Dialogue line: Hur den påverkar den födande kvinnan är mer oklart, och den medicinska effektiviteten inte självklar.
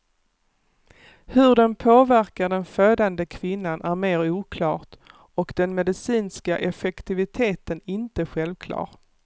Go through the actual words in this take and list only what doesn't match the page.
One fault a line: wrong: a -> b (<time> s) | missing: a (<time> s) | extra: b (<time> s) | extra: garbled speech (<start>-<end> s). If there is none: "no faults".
no faults